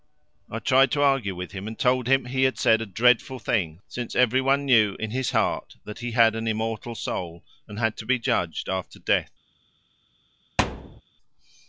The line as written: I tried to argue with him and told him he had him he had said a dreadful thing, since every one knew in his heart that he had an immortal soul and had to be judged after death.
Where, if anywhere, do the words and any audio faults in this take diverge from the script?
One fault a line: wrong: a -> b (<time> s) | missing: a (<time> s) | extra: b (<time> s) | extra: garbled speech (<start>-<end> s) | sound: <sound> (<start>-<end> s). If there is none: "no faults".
missing: him he had (2.6 s)
sound: thud (10.6-11.0 s)